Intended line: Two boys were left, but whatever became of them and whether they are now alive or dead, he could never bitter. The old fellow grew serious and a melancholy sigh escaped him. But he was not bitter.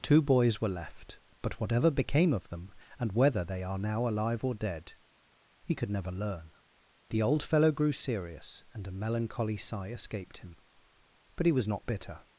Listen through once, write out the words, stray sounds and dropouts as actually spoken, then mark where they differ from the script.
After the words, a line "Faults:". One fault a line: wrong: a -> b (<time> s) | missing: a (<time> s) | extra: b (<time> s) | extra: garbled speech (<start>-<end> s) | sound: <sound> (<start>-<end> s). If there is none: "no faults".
Two boys were left, but whatever became of them and whether they are now alive or dead, he could never learn. The old fellow grew serious and a melancholy sigh escaped him. But he was not bitter.
Faults:
wrong: bitter -> learn (6.1 s)